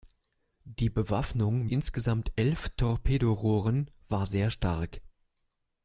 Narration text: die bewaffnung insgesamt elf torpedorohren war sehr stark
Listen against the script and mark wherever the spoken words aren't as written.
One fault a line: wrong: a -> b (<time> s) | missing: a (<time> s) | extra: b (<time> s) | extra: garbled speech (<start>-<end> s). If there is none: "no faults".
no faults